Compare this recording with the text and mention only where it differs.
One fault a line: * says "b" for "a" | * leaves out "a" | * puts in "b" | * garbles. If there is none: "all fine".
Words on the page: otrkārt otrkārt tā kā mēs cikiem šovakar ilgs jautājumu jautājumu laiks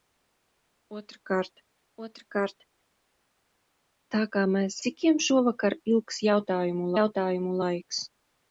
all fine